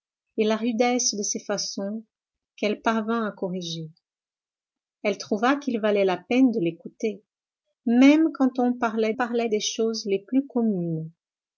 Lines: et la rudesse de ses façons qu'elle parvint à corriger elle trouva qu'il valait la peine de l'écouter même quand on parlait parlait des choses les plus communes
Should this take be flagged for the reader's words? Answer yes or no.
no